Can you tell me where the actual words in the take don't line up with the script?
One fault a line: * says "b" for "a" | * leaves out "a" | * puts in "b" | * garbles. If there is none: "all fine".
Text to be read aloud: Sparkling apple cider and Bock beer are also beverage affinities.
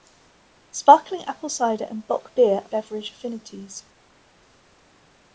* leaves out "are also"